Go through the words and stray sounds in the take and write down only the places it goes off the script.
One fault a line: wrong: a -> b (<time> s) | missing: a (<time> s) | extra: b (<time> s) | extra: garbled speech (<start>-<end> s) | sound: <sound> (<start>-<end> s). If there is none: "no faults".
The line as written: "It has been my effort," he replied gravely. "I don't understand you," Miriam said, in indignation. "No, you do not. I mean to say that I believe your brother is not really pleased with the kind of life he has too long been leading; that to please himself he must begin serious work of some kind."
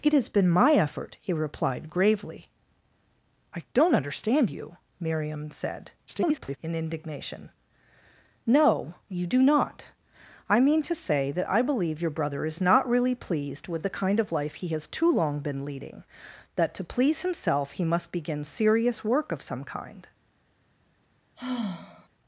extra: garbled speech (6.1-6.6 s)
sound: sigh (21.4-22.1 s)